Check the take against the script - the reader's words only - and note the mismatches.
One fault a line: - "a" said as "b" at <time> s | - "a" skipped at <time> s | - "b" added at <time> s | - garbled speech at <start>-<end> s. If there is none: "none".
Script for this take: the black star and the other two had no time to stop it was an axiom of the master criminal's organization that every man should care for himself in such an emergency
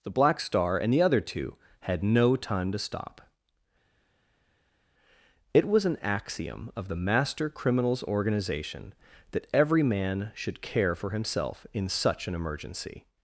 none